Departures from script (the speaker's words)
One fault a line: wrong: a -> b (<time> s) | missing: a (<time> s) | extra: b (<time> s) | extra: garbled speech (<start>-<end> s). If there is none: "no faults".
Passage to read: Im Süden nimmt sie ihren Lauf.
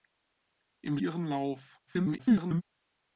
missing: Süden nimmt sie (1.0 s)
extra: garbled speech (1.9-2.6 s)